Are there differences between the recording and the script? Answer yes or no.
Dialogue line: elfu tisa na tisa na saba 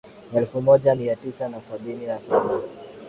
yes